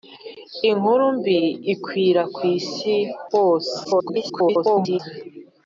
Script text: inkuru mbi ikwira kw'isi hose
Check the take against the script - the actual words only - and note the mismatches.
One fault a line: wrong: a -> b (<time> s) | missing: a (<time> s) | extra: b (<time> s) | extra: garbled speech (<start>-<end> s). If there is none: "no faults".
extra: garbled speech (3.8-5.0 s)